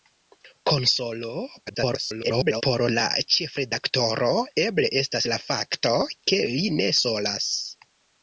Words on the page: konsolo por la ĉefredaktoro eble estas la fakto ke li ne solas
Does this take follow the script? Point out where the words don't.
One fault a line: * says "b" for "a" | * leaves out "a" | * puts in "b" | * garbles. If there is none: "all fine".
* garbles